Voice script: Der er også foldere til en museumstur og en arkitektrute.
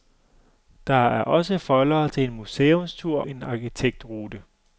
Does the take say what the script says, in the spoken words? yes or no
no